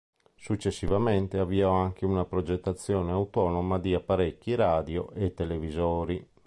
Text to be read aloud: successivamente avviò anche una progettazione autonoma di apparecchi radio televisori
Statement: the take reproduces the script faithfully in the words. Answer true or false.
false